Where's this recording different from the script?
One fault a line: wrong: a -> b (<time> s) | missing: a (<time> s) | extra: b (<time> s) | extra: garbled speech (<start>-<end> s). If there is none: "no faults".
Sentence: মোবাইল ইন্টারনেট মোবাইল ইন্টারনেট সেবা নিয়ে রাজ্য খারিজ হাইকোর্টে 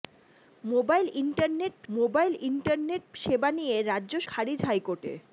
no faults